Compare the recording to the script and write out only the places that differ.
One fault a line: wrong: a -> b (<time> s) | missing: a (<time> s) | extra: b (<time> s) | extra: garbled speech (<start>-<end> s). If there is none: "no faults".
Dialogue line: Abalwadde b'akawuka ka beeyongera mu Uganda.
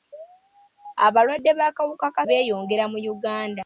no faults